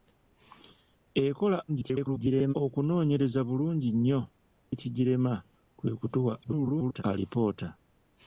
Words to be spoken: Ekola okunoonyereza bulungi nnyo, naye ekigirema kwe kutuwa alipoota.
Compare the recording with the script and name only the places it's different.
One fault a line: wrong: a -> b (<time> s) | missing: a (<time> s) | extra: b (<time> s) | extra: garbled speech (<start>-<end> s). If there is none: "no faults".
extra: garbled speech (1.7-2.5 s)
missing: naye (4.2 s)
extra: garbled speech (6.4-7.0 s)